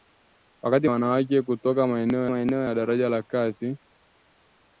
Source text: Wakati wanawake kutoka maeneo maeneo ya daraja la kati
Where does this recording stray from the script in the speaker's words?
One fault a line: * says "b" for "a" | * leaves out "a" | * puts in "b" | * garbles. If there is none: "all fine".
all fine